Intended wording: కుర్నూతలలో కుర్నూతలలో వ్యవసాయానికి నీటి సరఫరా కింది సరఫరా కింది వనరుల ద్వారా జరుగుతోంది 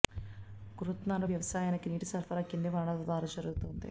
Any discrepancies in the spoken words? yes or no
yes